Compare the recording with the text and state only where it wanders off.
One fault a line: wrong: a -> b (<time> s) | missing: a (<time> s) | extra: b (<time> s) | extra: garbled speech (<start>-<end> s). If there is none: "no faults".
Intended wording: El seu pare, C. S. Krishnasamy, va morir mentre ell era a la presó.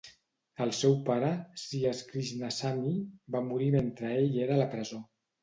no faults